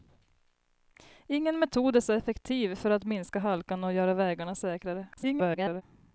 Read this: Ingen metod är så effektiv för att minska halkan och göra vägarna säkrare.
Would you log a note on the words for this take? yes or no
yes